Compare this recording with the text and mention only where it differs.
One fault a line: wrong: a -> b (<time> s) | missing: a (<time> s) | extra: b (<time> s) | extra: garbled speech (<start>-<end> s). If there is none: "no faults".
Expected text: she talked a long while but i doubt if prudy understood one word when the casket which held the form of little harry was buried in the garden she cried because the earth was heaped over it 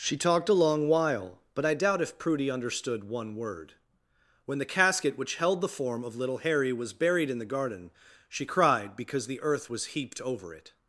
no faults